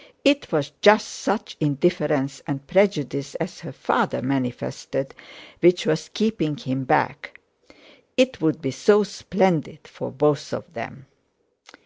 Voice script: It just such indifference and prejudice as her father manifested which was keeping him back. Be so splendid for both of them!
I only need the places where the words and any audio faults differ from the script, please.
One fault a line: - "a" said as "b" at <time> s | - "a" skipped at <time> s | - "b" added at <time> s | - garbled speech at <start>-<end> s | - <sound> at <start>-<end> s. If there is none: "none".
- "was" added at 0.5 s
- "It would" added at 8.1 s